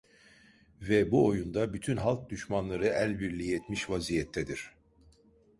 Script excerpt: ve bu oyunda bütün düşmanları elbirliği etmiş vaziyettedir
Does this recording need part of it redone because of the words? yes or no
yes